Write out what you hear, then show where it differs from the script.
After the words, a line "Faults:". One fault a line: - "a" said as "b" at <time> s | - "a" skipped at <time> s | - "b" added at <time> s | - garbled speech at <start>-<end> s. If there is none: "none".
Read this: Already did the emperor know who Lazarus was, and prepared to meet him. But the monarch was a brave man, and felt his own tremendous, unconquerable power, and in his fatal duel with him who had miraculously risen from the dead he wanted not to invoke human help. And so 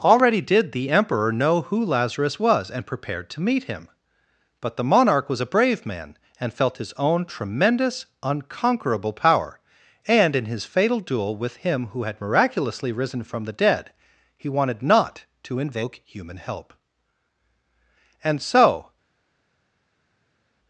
Already did the emperor know who Lazarus was, and prepared to meet him. But the monarch was a brave man, and felt his own tremendous, unconquerable power, and in his fatal duel with him who had miraculously risen from the dead he wanted not to invoke human help. And so
Faults:
none